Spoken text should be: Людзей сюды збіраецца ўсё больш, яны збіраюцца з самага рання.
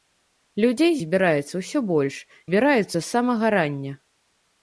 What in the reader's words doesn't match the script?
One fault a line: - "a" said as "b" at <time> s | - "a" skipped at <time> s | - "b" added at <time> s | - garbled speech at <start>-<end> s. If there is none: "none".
- "сюды" skipped at 0.9 s
- "яны" skipped at 2.2 s